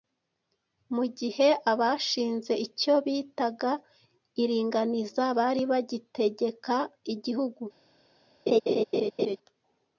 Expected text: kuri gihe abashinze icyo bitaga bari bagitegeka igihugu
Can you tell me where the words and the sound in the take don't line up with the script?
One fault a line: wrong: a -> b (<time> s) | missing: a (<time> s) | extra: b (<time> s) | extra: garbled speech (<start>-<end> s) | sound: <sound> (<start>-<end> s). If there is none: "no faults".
wrong: kuri -> mu (0.9 s)
extra: iringaniza (4.4 s)
sound: laugh (8.5-9.4 s)